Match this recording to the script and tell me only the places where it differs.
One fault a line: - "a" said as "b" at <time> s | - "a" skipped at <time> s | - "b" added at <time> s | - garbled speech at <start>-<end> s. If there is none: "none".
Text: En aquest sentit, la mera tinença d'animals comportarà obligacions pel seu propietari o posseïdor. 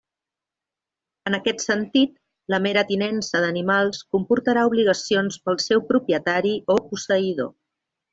none